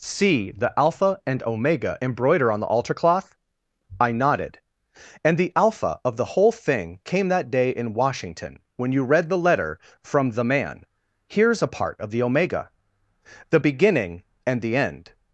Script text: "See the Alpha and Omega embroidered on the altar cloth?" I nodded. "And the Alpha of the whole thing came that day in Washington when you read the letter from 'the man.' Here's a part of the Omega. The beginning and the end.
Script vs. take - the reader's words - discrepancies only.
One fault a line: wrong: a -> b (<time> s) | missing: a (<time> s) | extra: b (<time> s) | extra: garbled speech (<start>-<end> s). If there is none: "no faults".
wrong: embroidered -> embroider (2.0 s)